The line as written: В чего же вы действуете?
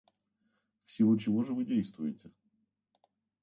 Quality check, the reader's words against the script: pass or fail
fail